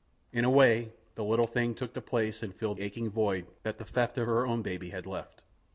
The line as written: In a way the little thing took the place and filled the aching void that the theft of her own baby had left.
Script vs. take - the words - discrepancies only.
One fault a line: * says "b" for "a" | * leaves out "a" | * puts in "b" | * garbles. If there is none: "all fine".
* leaves out "the"